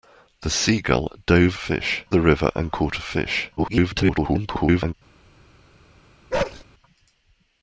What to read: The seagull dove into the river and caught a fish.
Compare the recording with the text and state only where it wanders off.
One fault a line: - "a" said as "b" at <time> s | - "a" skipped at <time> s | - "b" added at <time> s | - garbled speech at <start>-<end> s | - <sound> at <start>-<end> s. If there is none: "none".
- "into" said as "fish" at 1.6 s
- garbled speech at 3.6-4.9 s
- bark at 6.3-6.6 s